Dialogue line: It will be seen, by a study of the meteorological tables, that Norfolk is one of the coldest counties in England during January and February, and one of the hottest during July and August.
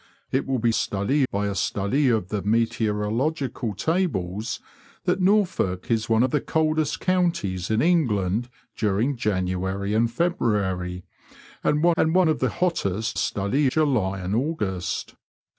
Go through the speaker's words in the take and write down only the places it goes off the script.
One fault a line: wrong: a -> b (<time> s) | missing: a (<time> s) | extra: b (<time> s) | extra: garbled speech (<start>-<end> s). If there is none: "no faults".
wrong: seen -> study (0.7 s)
extra: and one (12.0 s)
wrong: during -> study (13.1 s)